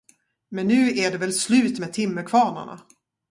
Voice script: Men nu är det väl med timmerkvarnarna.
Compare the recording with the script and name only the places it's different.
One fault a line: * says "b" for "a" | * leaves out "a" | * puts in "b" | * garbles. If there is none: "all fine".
* puts in "slut"